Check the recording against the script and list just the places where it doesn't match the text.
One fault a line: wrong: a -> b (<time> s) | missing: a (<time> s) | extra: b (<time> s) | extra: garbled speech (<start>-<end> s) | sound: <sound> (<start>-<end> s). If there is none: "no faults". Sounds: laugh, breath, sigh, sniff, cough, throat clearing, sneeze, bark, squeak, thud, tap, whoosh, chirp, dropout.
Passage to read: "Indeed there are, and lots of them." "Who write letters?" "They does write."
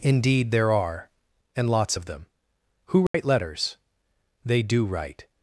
sound: dropout (3.1-3.1 s)
wrong: does -> do (4.6 s)